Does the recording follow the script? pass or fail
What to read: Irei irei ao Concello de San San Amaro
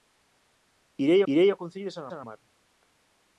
pass